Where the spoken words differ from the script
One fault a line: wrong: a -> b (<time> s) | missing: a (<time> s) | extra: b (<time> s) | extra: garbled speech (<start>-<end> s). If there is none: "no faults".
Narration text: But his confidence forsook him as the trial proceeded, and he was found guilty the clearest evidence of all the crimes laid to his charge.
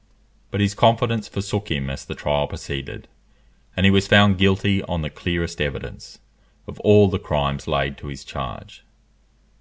extra: on (4.8 s)